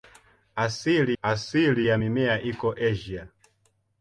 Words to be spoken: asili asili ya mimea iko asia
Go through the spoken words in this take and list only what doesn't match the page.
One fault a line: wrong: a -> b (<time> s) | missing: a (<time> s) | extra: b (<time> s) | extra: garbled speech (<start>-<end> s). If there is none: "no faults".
no faults